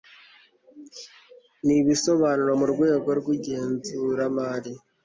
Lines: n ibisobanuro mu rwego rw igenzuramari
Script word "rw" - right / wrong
right